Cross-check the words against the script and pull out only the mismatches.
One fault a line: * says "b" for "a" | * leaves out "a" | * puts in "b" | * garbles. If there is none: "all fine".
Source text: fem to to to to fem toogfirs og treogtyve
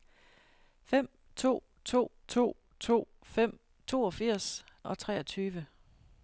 all fine